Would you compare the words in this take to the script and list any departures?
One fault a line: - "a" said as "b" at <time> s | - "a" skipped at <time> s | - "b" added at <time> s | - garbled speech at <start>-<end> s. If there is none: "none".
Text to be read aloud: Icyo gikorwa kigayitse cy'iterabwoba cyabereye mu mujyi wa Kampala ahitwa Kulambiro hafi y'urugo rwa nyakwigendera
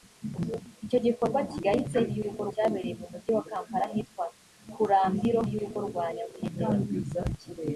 - "cy'iterabwoba" said as "y'urugo" at 2.2 s
- "hafi" skipped at 5.4 s